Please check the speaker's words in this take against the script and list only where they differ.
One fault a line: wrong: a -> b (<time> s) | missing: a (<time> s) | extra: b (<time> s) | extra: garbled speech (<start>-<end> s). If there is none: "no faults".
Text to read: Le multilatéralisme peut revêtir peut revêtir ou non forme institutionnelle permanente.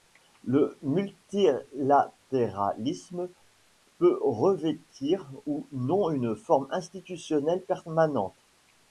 missing: peut revêtir (5.3 s)
extra: une (6.1 s)